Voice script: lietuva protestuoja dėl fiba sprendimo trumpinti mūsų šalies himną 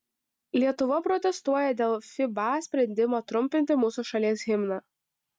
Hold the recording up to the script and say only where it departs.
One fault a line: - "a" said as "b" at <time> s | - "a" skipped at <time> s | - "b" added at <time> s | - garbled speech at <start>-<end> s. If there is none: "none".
none